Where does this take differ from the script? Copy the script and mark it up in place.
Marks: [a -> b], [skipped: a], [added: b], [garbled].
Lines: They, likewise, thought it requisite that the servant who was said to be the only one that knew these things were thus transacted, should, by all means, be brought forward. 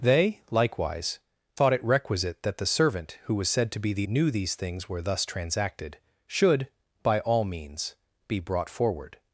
They, likewise, thought it requisite that the servant who was said to be the [skipped: only one that] knew these things were thus transacted, should, by all means, be brought forward.